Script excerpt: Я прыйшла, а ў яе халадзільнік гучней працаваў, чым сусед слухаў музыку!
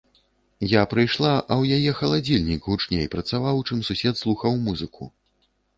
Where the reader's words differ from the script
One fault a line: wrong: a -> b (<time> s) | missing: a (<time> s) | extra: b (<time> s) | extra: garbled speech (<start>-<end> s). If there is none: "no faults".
no faults